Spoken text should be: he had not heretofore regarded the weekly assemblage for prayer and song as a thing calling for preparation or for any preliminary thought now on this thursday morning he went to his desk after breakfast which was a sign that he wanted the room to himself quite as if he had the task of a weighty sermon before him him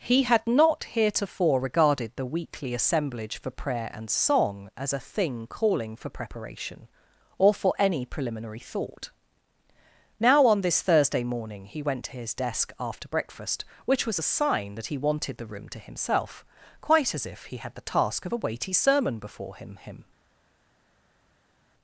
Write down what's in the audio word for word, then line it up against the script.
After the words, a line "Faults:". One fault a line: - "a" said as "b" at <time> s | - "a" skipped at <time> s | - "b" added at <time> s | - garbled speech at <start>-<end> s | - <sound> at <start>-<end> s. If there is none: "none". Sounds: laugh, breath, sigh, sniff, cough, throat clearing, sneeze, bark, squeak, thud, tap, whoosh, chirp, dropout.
he had not heretofore regarded the weekly assemblage for prayer and song as a thing calling for preparation or for any preliminary thought now on this thursday morning he went to his desk after breakfast which was a sign that he wanted the room to himself quite as if he had the task of a weighty sermon before him him
Faults:
none